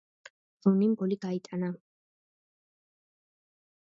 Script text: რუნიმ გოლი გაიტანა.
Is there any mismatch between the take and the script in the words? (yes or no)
no